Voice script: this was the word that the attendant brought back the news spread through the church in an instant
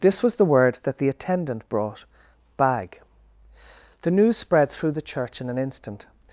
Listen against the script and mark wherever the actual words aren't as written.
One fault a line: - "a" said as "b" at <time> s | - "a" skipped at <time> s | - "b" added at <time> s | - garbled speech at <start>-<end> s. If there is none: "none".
- "back" said as "bag" at 2.6 s